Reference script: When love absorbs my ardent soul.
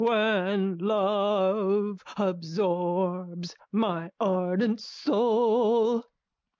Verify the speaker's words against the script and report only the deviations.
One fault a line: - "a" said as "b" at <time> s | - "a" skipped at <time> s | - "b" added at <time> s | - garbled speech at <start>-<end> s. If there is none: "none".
none